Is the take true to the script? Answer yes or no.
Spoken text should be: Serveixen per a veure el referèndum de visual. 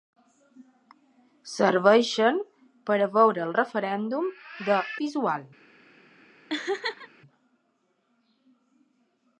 yes